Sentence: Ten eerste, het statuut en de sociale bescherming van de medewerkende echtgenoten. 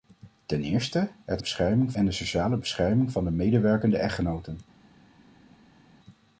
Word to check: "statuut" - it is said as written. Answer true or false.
false